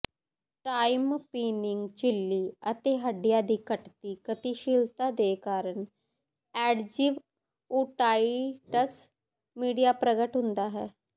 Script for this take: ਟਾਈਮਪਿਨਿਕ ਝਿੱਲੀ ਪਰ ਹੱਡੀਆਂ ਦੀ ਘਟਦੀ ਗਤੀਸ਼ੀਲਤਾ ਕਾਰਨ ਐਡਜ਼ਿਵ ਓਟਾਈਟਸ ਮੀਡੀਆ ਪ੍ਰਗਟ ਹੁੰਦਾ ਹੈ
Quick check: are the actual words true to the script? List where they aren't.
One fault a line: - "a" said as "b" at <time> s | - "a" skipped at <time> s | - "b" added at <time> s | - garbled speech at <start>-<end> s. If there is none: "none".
- "ਪਰ" said as "ਅਤੇ" at 2.7 s
- "ਦੇ" added at 5.1 s